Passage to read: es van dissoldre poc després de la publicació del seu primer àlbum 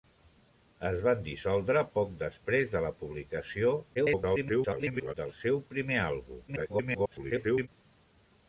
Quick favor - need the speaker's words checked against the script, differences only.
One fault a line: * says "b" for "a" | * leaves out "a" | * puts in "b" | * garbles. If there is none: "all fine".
* garbles
* garbles